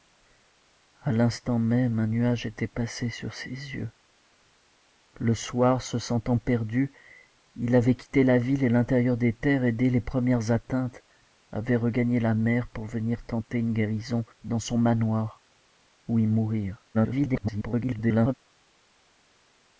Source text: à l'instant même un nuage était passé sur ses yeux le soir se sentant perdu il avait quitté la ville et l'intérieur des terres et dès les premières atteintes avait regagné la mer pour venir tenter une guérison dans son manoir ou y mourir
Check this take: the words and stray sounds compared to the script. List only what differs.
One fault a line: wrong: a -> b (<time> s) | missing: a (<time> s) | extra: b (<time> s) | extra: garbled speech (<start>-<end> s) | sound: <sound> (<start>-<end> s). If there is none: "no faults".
extra: garbled speech (16.9-18.3 s)